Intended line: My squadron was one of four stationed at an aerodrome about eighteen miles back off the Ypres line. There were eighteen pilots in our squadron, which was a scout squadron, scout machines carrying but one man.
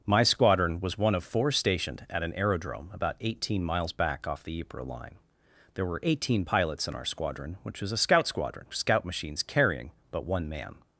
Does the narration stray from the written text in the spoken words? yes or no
no